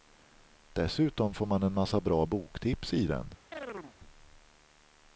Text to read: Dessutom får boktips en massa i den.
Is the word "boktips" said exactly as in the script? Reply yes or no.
no